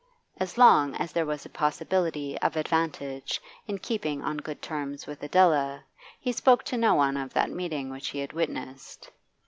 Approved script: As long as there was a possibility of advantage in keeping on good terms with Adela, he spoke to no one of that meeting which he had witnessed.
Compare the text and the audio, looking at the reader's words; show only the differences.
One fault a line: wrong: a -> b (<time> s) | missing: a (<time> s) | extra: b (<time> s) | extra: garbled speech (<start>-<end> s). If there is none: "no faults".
no faults